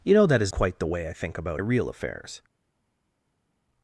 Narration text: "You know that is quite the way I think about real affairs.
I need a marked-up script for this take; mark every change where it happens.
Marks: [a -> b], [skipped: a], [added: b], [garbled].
"You know that is quite the way I think about real affairs.